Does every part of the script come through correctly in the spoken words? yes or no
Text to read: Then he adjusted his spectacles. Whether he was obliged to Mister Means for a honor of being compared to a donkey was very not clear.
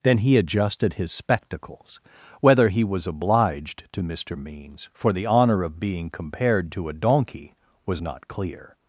no